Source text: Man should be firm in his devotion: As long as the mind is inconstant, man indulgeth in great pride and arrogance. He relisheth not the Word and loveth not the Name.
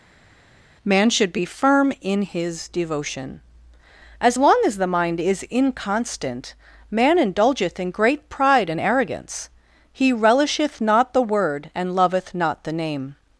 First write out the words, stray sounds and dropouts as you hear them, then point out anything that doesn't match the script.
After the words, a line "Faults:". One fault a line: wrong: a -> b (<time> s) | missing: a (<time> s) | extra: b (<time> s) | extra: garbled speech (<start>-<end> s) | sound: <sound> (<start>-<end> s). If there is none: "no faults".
Man should be firm in his devotion: As long as the mind is inconstant, man indulgeth in great pride and arrogance. He relisheth not the Word and loveth not the Name.
Faults:
no faults